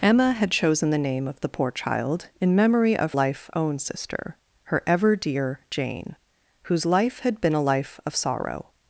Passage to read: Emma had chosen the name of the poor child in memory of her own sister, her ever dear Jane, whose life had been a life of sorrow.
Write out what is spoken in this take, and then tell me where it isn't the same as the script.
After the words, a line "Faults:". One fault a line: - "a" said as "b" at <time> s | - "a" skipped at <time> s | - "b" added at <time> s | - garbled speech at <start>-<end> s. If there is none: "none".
Emma had chosen the name of the poor child in memory of life own sister, her ever dear Jane, whose life had been a life of sorrow.
Faults:
- "her" said as "life" at 3.1 s